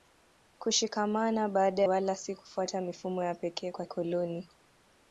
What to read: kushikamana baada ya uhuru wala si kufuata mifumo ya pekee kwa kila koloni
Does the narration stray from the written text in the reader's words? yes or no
yes